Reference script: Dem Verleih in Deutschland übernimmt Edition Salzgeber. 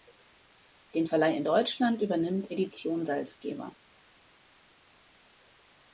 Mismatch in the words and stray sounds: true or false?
true